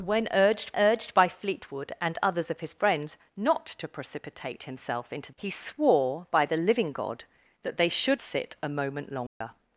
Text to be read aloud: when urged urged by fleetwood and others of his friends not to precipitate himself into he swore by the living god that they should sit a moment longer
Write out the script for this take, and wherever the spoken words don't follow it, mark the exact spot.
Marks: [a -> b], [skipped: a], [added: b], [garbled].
when urged urged by fleetwood and others of his friends not to precipitate himself into he swore by the living god that they should sit a moment longer